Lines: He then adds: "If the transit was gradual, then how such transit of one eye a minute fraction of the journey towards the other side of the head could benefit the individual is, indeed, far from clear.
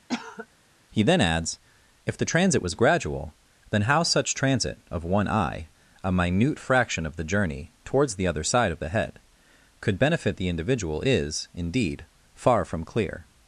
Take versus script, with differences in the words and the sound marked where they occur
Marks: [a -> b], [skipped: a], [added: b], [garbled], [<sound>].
[cough] He then adds: "If the transit was gradual, then how such transit of one eye a minute fraction of the journey towards the other side of the head could benefit the individual is, indeed, far from clear.